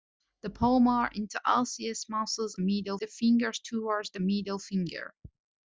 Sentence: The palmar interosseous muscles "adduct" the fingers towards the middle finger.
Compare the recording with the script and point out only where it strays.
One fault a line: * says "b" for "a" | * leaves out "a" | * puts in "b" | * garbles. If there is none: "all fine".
* says "middle" for "adduct"